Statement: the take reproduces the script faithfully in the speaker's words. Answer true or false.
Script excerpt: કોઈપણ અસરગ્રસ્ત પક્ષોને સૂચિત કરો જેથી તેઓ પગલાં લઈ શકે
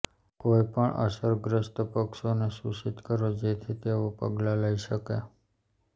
true